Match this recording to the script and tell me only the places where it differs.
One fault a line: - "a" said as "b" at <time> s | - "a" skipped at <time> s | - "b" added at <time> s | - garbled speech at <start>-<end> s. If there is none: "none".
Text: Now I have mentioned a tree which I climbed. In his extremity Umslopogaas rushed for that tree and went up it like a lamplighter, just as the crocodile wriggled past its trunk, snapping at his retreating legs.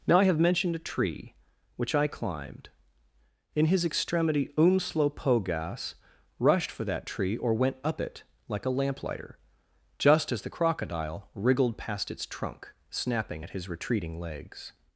- "and" said as "or" at 7.4 s